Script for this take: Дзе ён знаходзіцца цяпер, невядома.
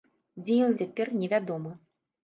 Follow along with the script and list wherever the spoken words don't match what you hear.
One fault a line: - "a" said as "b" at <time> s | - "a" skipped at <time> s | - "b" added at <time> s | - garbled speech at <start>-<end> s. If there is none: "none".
- "знаходзіцца" skipped at 0.7 s